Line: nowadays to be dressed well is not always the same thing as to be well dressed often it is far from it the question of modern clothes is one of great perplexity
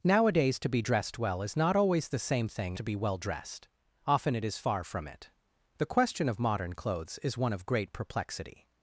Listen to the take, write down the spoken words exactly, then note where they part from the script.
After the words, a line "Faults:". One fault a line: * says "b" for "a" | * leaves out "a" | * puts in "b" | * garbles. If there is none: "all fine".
nowadays to be dressed well is not always the same thing to be well dressed often it is far from it the question of modern clothes is one of great perplexity
Faults:
* leaves out "as"